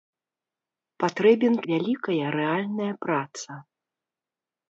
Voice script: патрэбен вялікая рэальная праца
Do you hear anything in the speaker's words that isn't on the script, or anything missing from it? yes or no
no